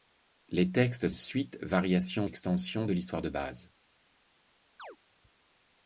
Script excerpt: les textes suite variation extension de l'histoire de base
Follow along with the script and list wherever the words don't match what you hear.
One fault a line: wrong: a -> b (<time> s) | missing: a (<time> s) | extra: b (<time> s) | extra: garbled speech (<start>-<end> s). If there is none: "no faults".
no faults